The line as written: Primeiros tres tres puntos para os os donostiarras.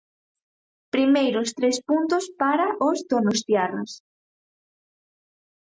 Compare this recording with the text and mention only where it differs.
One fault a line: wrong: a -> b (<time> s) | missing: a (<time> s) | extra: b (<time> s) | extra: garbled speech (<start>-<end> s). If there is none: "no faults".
missing: tres (1.8 s)
missing: os (3.0 s)